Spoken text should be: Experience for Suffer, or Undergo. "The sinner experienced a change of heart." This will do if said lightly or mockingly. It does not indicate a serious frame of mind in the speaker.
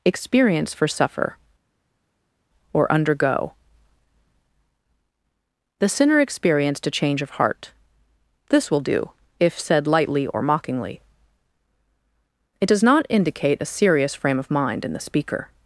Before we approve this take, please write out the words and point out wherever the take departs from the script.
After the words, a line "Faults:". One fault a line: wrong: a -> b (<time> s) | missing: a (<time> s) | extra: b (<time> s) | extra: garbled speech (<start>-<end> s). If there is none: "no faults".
Experience for Suffer, or Undergo. "The sinner experienced a change of heart." This will do if said lightly or mockingly. It does not indicate a serious frame of mind in the speaker.
Faults:
no faults